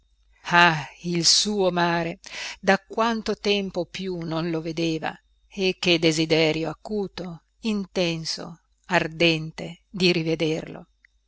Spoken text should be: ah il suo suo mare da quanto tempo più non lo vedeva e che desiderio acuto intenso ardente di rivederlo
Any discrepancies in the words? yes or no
yes